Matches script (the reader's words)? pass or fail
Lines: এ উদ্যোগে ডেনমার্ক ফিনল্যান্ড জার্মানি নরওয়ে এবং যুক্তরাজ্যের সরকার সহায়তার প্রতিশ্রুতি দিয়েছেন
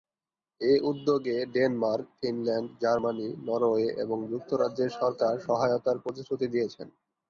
pass